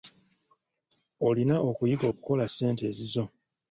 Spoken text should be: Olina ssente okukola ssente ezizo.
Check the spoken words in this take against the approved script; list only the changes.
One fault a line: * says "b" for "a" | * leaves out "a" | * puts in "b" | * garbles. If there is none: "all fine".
* says "okuyiga" for "ssente"